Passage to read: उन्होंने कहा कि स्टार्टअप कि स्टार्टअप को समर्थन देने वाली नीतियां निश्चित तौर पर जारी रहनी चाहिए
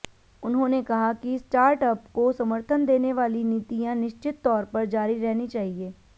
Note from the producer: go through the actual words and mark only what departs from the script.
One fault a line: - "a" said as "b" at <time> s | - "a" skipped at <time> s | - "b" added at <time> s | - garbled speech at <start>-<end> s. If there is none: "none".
- "कि स्टार्टअप" skipped at 2.1 s